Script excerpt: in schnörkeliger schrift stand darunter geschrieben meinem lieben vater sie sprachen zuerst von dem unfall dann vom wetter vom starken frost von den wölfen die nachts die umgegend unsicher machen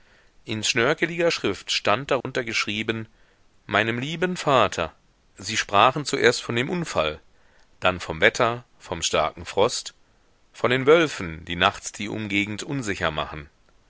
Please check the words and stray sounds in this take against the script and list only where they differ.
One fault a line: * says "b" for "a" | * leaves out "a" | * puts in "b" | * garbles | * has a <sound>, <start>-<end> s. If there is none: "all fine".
* has a dropout, 2.2-2.3 s